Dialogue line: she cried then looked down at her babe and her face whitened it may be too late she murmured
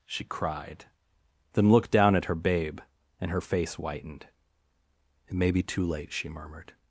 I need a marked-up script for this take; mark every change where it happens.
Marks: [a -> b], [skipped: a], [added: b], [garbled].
she cried then looked down at her babe and her face whitened it may be too late she murmured